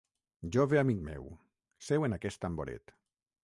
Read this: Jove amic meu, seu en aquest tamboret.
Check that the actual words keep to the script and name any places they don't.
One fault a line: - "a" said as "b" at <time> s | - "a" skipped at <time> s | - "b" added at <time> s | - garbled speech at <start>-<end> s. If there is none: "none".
none